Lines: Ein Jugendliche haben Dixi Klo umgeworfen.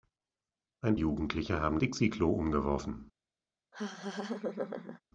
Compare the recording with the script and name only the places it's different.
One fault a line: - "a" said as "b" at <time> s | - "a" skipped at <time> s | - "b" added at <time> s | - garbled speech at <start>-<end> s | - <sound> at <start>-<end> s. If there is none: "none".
- laugh at 3.7-5.0 s